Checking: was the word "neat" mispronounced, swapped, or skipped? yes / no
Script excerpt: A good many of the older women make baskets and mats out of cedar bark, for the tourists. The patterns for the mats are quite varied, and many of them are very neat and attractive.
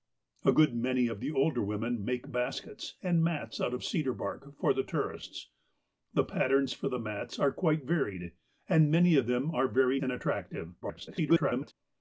yes